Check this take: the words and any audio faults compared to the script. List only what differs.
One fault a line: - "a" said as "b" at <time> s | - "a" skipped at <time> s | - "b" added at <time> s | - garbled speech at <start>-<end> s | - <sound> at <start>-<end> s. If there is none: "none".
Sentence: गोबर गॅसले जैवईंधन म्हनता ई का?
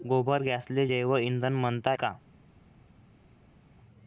- "ई" skipped at 1.9 s